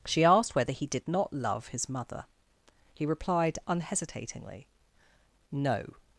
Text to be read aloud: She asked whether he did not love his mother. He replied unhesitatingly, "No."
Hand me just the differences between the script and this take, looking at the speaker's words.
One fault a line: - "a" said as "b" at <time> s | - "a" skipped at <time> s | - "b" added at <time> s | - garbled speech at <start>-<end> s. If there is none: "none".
none